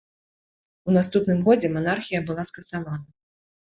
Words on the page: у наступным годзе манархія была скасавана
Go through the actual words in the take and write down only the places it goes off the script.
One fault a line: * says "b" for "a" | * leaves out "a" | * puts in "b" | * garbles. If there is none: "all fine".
all fine